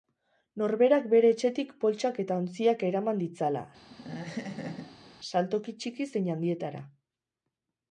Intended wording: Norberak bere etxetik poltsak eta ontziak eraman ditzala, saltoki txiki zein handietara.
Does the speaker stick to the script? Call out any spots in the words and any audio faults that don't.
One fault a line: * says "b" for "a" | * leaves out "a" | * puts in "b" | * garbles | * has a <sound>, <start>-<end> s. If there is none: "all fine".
* has a laugh, 3.9-5.1 s